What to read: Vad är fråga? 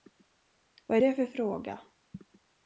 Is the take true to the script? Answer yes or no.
no